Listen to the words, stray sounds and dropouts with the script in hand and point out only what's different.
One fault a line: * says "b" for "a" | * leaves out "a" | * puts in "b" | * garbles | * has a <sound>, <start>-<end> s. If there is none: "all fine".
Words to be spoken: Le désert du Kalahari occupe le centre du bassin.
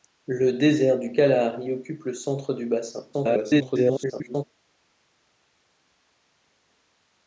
* garbles